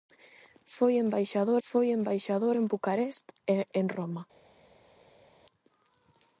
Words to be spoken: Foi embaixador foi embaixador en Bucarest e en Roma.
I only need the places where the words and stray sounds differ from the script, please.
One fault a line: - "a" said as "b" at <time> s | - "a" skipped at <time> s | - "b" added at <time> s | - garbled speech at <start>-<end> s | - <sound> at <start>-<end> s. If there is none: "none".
none